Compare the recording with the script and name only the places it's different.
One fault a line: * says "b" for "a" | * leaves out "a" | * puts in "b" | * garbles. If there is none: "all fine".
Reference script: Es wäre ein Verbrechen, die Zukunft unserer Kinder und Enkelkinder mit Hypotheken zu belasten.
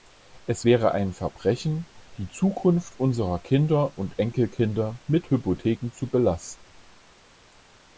all fine